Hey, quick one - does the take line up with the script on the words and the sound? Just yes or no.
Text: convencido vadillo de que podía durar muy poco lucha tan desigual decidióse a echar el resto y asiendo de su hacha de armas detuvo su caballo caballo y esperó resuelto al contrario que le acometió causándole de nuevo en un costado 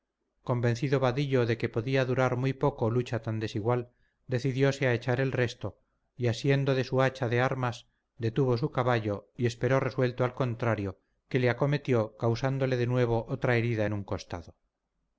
no